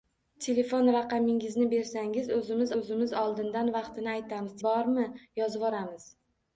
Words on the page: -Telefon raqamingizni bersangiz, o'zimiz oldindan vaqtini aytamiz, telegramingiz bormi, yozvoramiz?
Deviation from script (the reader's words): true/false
true